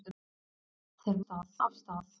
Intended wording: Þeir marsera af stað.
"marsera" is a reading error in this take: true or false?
true